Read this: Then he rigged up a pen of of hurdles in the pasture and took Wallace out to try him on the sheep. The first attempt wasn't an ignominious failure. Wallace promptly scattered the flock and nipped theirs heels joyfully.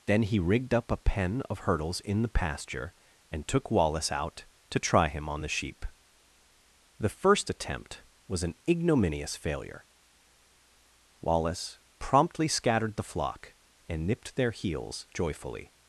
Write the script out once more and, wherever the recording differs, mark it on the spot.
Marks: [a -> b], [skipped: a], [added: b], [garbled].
Then he rigged up a pen of [skipped: of] hurdles in the pasture and took Wallace out to try him on the sheep. The first attempt [wasn't -> was] an ignominious failure. Wallace promptly scattered the flock and nipped [theirs -> their] heels joyfully.